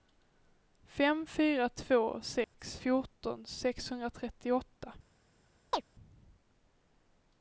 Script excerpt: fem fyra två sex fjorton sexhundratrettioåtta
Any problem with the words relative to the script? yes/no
no